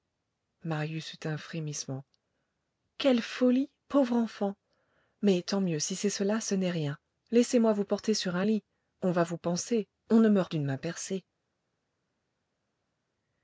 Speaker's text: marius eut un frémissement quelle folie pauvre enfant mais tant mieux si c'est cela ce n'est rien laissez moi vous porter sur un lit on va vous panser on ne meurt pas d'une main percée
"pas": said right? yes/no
no